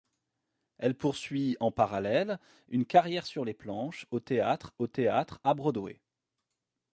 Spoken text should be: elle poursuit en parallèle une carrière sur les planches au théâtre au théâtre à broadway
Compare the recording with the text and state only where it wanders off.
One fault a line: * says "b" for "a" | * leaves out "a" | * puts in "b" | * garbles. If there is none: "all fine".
all fine